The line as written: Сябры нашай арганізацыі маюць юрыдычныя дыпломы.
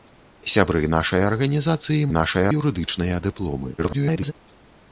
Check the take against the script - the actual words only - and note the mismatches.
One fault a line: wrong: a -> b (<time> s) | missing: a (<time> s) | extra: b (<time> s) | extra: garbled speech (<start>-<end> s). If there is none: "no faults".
wrong: маюць -> нашай (2.2 s)
extra: garbled speech (3.8-4.3 s)